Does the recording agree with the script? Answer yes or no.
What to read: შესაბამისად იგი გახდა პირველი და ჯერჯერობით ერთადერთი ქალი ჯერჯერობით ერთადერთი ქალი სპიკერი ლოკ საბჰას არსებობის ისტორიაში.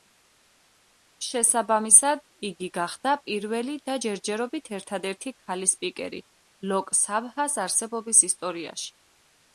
no